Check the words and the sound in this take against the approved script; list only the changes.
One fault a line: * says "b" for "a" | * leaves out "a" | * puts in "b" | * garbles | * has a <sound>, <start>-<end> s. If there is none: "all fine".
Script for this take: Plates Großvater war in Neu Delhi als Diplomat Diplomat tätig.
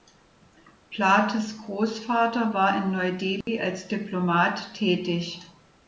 * has a dropout, 3.4-3.5 s
* leaves out "Diplomat"